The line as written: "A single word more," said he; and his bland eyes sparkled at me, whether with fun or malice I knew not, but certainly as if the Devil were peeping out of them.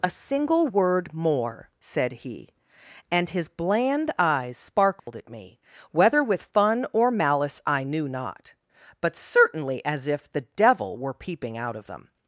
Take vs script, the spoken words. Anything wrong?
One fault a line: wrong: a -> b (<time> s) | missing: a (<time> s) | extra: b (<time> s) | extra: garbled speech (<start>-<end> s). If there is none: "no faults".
no faults